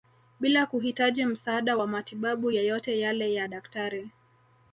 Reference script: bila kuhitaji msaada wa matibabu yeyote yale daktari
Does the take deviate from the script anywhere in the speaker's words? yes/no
yes